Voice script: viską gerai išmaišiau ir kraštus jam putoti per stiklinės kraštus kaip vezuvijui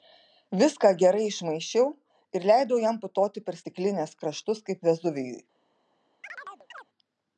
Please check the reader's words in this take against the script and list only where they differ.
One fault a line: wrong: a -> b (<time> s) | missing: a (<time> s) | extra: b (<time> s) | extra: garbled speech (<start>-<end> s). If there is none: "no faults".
wrong: kraštus -> leidau (2.5 s)